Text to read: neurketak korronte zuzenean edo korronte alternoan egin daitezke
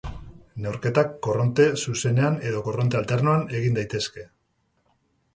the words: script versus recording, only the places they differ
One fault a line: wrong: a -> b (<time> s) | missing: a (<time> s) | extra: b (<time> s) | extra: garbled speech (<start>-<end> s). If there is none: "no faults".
no faults